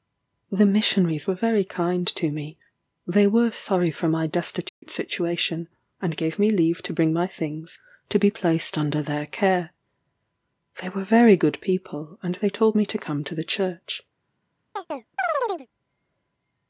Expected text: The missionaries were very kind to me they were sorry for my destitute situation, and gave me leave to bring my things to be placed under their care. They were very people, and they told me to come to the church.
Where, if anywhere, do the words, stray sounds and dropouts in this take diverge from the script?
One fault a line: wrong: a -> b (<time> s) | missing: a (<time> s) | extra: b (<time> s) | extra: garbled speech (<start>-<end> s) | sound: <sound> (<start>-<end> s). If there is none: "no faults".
sound: dropout (4.7-4.8 s)
extra: good (11.4 s)
sound: chirp (14.8-15.7 s)